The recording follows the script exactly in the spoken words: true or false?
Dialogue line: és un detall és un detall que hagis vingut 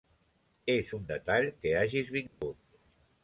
false